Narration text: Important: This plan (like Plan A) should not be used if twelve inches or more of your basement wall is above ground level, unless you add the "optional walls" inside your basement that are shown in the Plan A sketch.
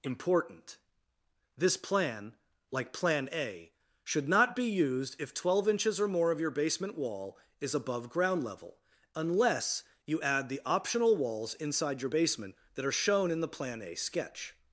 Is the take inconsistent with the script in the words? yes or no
no